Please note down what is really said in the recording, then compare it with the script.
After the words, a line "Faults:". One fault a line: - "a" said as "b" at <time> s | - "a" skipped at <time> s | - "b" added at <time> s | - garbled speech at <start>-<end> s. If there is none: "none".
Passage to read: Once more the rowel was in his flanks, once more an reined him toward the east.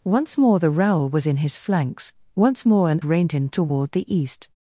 Once more the rowel was in his flanks, once more an reined him toward the east.
Faults:
none